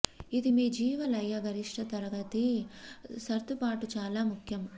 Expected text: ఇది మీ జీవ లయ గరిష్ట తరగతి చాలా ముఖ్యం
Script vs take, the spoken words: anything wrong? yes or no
yes